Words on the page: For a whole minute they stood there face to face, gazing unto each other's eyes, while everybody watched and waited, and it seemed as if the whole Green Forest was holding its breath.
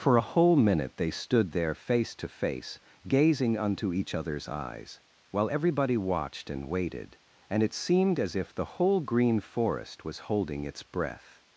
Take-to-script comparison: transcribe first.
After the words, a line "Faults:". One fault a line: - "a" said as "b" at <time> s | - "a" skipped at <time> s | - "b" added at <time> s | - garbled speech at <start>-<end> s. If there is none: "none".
For a whole minute they stood there face to face, gazing unto each other's eyes, while everybody watched and waited, and it seemed as if the whole Green Forest was holding its breath.
Faults:
none